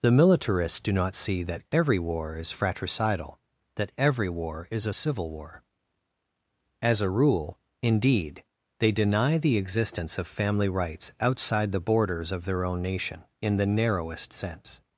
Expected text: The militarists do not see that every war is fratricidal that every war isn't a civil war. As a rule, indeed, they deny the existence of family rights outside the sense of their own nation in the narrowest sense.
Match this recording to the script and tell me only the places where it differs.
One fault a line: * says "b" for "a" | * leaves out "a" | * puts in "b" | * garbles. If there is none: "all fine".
* says "is" for "isn't"
* says "borders" for "sense"